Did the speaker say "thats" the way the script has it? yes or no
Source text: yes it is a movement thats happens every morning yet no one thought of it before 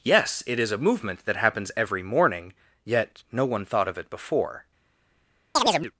no